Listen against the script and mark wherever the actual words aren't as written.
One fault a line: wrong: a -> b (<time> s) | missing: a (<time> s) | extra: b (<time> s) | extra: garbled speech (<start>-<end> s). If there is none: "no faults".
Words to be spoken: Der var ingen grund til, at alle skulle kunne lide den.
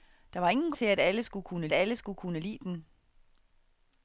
missing: grund (0.7 s)
extra: alle skulle kunne (1.7 s)